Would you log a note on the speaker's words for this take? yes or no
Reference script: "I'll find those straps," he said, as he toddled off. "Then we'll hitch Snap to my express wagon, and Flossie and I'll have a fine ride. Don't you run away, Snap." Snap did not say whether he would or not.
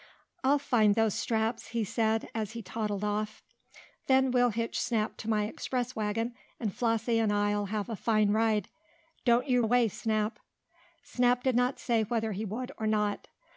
yes